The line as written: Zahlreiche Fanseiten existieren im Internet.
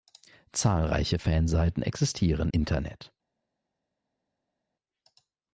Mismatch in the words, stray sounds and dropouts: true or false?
true